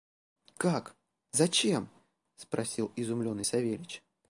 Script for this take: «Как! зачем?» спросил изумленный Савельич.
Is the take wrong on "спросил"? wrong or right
right